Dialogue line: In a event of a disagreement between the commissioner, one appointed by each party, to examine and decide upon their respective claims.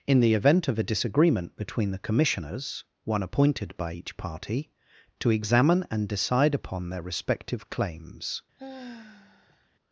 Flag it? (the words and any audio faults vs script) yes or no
yes